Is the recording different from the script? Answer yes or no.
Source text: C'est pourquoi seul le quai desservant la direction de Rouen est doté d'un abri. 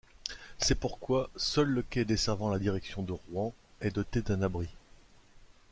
no